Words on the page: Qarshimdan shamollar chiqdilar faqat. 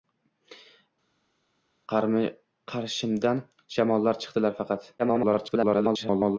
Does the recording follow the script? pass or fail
fail